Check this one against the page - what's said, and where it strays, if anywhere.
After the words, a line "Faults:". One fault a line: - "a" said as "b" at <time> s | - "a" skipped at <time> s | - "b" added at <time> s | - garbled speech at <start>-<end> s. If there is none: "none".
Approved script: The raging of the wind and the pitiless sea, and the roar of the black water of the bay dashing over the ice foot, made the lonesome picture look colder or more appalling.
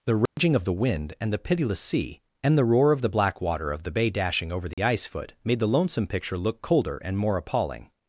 The raging of the wind and the pitiless sea, and the roar of the black water of the bay dashing over the ice foot, made the lonesome picture look colder and more appalling.
Faults:
- "or" said as "and" at 7.0 s